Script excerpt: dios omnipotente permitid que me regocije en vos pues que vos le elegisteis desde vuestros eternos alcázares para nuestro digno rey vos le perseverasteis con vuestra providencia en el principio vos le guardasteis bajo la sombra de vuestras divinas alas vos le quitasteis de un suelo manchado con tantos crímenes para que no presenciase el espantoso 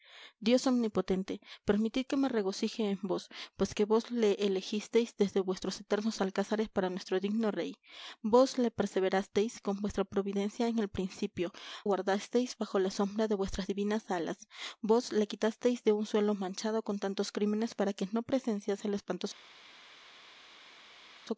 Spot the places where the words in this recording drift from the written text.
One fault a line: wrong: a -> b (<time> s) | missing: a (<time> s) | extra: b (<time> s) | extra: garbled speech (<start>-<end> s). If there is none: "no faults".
missing: vos le (11.5 s)